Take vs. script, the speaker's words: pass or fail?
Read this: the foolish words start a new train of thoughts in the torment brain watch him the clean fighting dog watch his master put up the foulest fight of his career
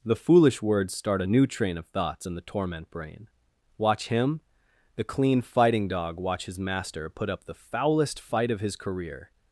pass